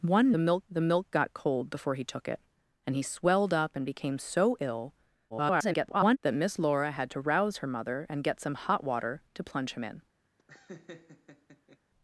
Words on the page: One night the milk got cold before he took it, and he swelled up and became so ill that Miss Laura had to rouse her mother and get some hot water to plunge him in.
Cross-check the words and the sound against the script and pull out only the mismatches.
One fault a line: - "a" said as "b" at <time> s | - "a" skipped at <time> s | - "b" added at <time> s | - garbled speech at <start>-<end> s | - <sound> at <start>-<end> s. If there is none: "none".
- "night" said as "milk" at 0.4 s
- garbled speech at 5.3-6.2 s
- laugh at 10.4-11.8 s